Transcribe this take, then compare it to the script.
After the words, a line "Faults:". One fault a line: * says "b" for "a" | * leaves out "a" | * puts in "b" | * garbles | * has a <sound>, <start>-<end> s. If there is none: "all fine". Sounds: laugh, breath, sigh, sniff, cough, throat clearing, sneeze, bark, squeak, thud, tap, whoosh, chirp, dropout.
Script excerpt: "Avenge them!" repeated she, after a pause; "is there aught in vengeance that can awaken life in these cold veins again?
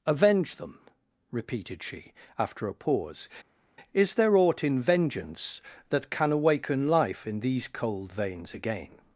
"Avenge them!" repeated she, after a pause; "is there aught in vengeance that can awaken life in these cold veins again?
Faults:
all fine